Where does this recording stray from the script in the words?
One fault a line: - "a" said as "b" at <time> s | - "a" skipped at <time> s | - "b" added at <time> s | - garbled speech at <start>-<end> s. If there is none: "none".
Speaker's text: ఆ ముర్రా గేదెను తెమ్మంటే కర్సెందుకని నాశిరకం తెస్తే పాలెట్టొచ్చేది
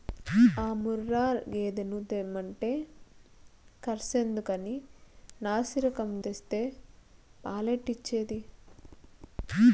none